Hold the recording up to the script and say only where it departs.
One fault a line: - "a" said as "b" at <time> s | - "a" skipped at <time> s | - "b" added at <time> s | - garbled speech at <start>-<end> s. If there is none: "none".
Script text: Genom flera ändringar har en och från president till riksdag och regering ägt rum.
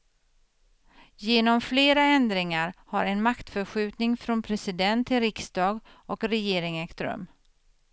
- "och" said as "maktförskjutning" at 3.2 s